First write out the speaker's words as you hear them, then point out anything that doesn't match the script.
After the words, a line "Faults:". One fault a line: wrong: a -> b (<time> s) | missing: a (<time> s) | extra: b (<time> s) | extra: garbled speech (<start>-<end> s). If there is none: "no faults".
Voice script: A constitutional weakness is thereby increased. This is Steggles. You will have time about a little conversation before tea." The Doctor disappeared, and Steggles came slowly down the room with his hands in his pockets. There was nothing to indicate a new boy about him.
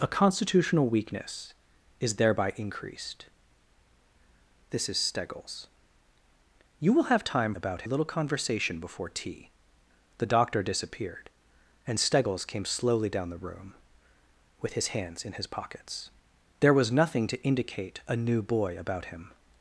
A constitutional weakness is thereby increased. This is Steggles. You will have time about a little conversation before tea." The Doctor disappeared, and Steggles came slowly down the room with his hands in his pockets. There was nothing to indicate a new boy about him.
Faults:
no faults